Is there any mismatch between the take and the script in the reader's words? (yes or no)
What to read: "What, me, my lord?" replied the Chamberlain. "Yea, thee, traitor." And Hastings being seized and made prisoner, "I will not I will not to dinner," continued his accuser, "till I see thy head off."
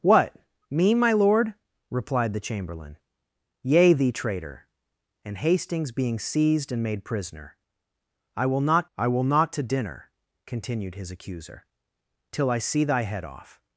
no